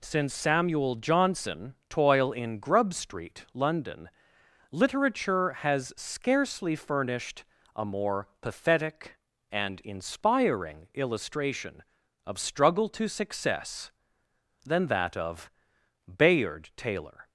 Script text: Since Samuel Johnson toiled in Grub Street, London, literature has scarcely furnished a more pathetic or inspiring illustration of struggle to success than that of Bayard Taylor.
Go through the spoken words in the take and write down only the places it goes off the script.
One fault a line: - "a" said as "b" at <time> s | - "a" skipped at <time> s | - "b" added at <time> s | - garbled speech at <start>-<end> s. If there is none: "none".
- "toiled" said as "toil" at 1.9 s
- "or" said as "and" at 9.5 s